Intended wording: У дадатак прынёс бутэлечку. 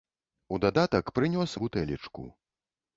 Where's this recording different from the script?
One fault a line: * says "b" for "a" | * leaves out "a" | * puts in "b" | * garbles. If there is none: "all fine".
all fine